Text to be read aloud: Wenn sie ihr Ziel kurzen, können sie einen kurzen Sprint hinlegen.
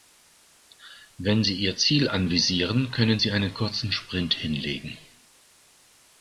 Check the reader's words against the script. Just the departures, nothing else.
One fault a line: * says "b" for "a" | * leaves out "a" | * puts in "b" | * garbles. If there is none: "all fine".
* says "anvisieren" for "kurzen"